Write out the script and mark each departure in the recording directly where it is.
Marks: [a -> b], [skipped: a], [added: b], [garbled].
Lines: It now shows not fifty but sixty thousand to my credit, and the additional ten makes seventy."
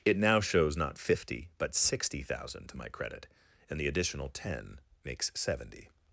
It now shows not fifty but sixty thousand to my credit, and the additional ten makes seventy."